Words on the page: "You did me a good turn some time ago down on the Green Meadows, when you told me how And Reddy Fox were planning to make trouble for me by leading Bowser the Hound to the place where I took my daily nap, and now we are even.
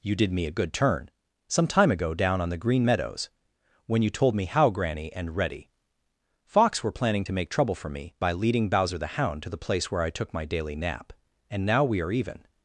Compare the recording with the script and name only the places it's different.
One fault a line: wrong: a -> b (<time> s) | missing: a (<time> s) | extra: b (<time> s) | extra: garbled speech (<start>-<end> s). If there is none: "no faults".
extra: Granny (4.7 s)